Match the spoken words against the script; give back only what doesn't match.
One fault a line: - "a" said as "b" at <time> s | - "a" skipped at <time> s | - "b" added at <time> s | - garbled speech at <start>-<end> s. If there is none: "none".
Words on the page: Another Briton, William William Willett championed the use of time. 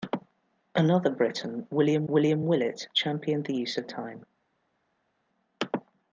none